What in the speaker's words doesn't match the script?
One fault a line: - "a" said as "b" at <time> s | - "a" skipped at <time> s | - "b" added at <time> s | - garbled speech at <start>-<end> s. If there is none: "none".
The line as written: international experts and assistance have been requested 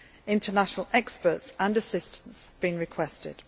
- "have" skipped at 2.5 s